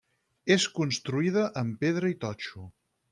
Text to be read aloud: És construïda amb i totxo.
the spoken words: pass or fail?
fail